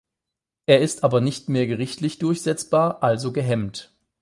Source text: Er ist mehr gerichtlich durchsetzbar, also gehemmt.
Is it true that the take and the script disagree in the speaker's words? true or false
true